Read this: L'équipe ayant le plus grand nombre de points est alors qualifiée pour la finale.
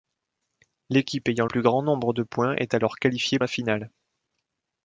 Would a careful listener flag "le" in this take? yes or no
yes